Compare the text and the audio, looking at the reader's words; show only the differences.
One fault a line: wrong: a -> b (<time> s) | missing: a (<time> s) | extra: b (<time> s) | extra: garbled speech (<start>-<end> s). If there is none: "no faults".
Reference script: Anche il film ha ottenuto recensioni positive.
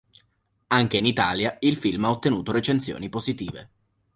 extra: in Italia (0.9 s)